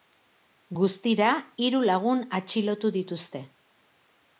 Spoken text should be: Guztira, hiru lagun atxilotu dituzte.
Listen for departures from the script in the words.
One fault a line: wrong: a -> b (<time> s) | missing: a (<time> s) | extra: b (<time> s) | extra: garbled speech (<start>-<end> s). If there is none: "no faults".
no faults